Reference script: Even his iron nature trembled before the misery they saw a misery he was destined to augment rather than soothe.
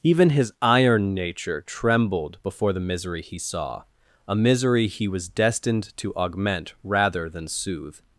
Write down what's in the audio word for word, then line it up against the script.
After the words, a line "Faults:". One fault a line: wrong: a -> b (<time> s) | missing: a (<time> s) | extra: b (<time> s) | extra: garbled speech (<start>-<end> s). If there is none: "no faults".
Even his iron nature trembled before the misery he saw a misery he was destined to augment rather than soothe.
Faults:
wrong: they -> he (3.2 s)